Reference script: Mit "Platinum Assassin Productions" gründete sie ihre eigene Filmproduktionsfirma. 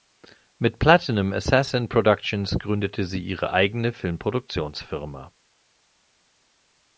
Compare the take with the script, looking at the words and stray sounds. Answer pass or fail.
pass